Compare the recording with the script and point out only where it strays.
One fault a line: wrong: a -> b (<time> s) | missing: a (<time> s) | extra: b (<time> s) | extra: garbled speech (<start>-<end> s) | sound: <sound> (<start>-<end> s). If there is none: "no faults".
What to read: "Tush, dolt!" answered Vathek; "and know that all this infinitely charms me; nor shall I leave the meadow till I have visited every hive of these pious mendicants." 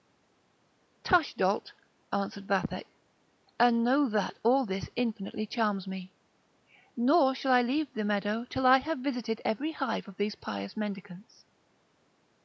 no faults